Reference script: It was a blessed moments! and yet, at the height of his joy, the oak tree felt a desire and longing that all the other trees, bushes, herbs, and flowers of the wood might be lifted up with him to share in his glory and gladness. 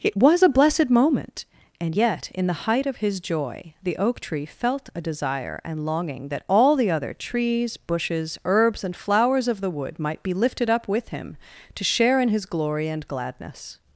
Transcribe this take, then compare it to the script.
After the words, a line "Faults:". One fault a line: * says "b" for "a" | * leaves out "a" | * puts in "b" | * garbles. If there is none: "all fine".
It was a blessed moment! and yet, in the height of his joy, the oak tree felt a desire and longing that all the other trees, bushes, herbs, and flowers of the wood might be lifted up with him to share in his glory and gladness.
Faults:
* says "moment" for "moments"
* says "in" for "at"